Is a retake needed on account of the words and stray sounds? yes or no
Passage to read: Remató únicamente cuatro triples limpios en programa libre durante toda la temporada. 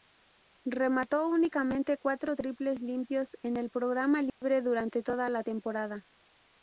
yes